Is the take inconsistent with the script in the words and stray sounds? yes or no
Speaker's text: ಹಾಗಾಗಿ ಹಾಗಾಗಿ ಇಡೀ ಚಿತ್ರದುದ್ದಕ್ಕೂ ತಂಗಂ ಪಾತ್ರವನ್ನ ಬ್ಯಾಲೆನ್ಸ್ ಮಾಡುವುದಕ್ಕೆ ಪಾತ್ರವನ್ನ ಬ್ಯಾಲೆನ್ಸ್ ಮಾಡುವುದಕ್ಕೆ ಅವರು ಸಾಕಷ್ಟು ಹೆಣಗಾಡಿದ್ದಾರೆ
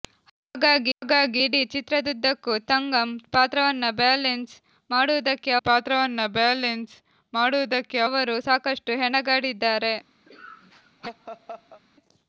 yes